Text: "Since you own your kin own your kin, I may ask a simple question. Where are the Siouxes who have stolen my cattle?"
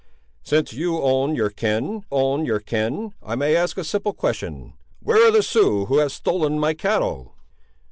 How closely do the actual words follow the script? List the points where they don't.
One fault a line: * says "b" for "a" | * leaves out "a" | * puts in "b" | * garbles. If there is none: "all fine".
all fine